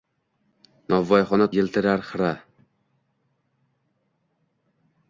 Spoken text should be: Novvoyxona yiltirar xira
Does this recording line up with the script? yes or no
yes